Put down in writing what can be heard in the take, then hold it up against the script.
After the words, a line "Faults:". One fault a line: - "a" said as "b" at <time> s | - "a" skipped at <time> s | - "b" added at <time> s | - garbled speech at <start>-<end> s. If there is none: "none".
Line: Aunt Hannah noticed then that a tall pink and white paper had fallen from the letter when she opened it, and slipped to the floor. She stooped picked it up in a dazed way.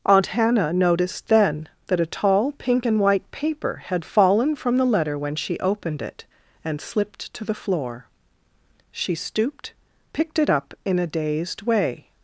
Aunt Hannah noticed then that a tall pink and white paper had fallen from the letter when she opened it, and slipped to the floor. She stooped picked it up in a dazed way.
Faults:
none